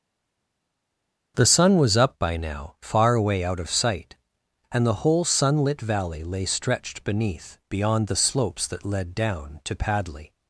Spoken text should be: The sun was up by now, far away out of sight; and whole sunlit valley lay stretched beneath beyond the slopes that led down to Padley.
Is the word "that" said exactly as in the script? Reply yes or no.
yes